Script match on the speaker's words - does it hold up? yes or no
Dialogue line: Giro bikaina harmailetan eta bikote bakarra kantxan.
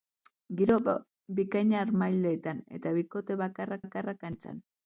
no